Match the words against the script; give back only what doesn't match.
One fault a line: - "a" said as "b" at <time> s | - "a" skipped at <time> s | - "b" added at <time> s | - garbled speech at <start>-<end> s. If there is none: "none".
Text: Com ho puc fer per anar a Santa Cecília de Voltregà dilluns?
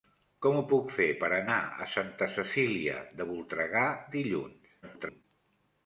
- garbled speech at 4.8-5.2 s